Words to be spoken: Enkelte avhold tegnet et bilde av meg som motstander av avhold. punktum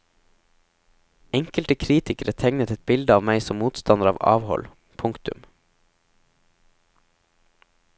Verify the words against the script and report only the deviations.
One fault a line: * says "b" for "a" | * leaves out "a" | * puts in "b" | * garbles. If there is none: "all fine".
* says "kritikere" for "avhold"